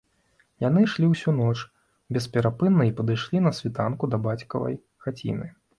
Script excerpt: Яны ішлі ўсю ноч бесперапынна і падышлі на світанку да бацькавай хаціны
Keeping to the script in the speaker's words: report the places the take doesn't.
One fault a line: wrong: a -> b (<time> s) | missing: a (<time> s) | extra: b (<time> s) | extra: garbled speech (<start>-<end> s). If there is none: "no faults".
no faults